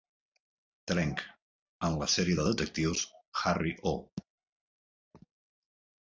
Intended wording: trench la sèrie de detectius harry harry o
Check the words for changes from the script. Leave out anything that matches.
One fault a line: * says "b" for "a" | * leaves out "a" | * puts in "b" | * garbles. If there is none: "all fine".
* puts in "en"
* leaves out "harry"